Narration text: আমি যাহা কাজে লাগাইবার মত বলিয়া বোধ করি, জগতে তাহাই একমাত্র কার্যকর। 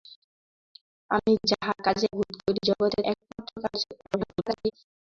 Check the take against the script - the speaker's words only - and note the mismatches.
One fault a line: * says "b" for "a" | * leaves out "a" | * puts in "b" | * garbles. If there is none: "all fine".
* leaves out "লাগাইবার মত বলিয়া"
* leaves out "তাহাই"
* garbles